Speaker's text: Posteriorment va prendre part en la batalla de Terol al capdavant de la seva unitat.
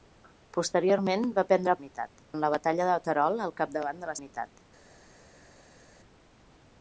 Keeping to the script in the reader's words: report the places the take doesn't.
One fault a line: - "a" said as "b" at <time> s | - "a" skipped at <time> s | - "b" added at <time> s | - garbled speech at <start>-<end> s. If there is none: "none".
- "part" said as "unitat" at 1.8 s
- "seva" skipped at 4.2 s